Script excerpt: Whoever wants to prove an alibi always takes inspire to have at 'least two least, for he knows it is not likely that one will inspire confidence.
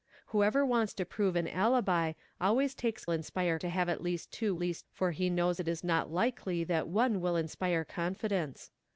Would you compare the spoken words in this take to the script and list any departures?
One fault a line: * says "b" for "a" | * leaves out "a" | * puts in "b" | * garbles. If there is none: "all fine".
all fine